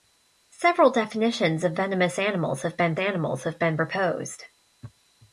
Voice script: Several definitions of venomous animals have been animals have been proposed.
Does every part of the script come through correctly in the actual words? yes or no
yes